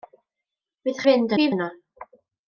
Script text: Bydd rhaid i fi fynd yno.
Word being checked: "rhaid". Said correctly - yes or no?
no